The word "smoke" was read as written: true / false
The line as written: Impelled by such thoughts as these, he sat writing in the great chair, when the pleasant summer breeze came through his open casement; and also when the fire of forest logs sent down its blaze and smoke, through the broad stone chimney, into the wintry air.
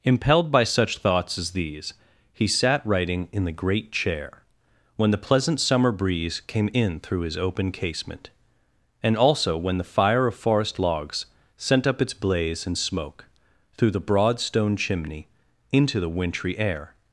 true